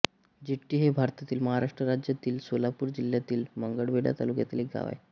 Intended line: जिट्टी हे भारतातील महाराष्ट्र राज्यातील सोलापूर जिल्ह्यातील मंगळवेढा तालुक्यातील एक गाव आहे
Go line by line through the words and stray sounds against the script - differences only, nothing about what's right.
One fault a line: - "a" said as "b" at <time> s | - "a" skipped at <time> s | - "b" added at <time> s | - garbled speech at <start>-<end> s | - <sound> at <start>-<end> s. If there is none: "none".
none